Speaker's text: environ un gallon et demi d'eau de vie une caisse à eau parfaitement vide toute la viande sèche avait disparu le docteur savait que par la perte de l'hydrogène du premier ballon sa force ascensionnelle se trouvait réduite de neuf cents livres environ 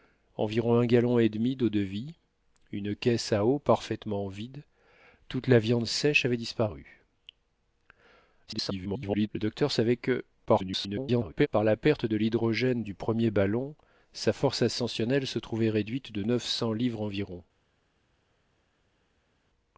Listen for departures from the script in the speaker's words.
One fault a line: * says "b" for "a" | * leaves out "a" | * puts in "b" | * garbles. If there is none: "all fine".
* garbles
* garbles